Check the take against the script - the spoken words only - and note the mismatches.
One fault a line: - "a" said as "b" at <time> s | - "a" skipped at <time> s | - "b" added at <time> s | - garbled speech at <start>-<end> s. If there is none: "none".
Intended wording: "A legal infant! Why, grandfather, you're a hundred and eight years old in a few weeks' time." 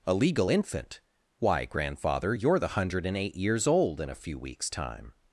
- "a" said as "the" at 2.6 s